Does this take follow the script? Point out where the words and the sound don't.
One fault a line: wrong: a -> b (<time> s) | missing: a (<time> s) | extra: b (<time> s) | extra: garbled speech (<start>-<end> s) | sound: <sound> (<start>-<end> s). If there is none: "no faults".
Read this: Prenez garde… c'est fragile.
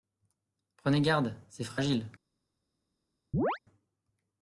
sound: chirp (3.3-3.6 s)